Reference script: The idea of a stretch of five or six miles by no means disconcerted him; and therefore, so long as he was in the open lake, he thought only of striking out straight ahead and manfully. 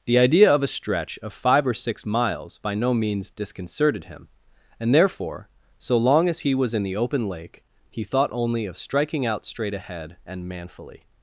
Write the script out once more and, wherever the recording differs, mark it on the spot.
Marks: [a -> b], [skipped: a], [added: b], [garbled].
The idea of a stretch of five or six miles by no means disconcerted him; and therefore, so long as he was in the open lake, he thought only of striking out straight ahead and manfully.